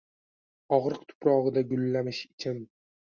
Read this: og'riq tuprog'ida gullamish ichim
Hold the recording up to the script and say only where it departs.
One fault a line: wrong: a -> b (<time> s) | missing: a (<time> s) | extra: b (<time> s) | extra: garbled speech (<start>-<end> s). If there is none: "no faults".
no faults